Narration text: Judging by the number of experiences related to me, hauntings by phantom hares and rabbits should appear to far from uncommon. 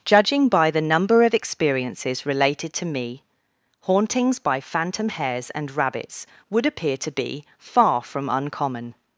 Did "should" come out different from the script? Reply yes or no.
yes